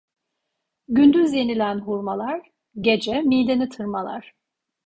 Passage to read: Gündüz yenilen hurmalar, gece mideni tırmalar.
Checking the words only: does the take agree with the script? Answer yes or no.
yes